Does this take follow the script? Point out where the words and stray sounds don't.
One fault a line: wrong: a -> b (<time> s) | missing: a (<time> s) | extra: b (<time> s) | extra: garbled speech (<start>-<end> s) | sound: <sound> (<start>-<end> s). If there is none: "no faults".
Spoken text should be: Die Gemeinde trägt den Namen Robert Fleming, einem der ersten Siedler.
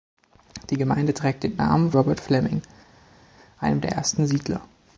no faults